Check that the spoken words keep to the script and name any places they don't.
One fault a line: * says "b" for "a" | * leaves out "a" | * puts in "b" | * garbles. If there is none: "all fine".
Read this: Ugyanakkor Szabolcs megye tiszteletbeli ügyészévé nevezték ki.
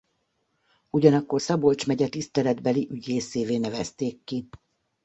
all fine